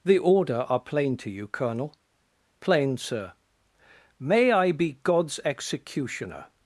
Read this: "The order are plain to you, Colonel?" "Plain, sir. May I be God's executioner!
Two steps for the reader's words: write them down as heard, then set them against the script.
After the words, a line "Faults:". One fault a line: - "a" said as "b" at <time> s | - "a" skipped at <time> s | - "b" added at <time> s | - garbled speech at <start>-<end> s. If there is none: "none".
"The order are plain to you, Colonel?" "Plain, sir. May I be God's executioner!
Faults:
none